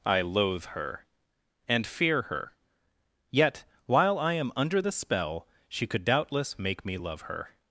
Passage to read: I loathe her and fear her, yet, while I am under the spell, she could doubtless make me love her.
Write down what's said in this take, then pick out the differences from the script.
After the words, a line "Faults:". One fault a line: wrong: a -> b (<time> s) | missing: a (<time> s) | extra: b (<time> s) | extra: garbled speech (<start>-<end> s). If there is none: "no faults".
I loathe her and fear her, yet, while I am under the spell, she could doubtless make me love her.
Faults:
no faults